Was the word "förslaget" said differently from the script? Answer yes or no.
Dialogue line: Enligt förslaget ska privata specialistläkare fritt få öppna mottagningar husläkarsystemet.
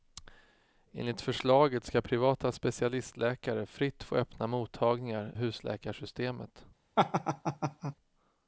no